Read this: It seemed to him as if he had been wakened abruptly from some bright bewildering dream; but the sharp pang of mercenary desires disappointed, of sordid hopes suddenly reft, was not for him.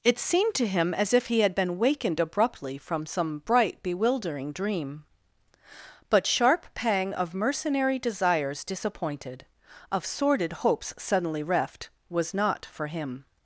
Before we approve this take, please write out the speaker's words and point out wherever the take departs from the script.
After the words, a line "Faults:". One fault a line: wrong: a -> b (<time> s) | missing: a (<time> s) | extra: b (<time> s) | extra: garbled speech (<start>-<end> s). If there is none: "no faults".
It seemed to him as if he had been wakened abruptly from some bright bewildering dream; but sharp pang of mercenary desires disappointed, of sordid hopes suddenly reft, was not for him.
Faults:
missing: the (6.2 s)